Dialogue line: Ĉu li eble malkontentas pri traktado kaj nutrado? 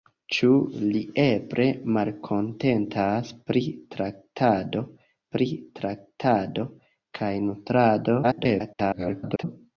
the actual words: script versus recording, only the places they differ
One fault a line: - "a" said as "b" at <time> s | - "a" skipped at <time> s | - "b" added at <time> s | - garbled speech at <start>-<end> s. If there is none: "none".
- "pri traktado" added at 5.3 s
- garbled speech at 8.2-9.4 s